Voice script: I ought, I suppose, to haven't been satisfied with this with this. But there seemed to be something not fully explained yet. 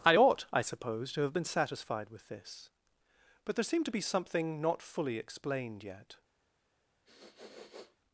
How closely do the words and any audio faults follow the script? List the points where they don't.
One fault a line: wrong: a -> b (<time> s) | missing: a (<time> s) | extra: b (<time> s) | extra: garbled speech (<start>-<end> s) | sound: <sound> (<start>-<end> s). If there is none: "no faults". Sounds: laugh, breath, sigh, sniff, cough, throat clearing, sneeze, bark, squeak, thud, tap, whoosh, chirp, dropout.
wrong: haven't -> have (1.2 s)
missing: with this (2.7 s)
sound: sniff (7.0-8.0 s)